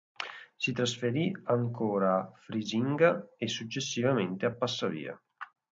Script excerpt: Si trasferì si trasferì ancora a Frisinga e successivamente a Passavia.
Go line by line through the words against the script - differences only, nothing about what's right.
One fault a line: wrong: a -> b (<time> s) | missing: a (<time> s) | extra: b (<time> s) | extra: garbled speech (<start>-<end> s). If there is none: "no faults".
missing: si trasferì (1.3 s)